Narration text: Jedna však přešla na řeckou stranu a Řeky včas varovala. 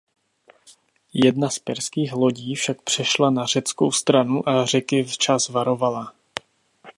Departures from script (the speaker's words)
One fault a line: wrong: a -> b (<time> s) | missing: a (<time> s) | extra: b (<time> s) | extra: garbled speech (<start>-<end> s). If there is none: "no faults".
extra: z perských lodí (1.5 s)